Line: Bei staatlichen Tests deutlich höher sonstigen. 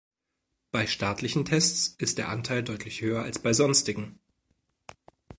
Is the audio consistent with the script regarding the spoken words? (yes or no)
no